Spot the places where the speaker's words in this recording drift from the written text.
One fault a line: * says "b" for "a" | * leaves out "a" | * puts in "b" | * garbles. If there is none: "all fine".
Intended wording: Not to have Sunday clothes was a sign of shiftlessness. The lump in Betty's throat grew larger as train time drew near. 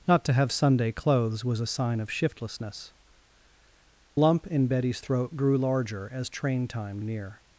* leaves out "The"
* leaves out "drew"